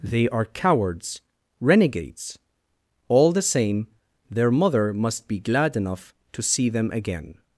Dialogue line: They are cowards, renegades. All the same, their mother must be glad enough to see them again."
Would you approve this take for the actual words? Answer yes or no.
yes